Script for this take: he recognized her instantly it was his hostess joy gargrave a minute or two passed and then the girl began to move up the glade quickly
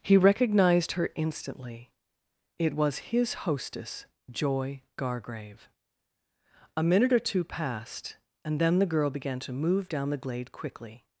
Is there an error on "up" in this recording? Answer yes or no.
yes